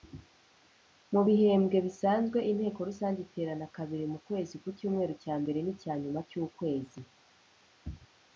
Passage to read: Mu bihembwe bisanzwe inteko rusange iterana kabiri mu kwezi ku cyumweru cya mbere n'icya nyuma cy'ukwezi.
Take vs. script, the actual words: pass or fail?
pass